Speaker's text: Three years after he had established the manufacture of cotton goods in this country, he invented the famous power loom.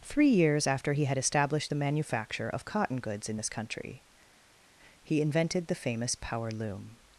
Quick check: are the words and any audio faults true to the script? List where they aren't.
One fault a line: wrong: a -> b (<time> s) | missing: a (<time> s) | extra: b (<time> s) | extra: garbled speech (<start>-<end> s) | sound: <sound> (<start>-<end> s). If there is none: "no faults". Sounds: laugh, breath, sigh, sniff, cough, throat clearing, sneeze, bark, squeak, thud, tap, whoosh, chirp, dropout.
no faults